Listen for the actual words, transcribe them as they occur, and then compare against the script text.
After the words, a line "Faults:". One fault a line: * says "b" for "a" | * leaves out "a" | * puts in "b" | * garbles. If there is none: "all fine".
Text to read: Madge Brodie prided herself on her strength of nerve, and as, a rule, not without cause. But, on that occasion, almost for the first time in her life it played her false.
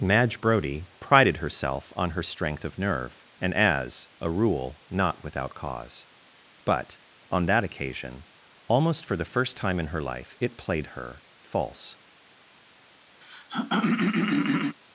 Madge Brodie prided herself on her strength of nerve, and as, a rule, not without cause. But, on that occasion, almost for the first time in her life it played her false.
Faults:
all fine